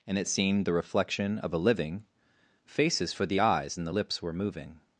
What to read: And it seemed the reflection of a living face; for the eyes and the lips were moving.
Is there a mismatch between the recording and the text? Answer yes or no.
yes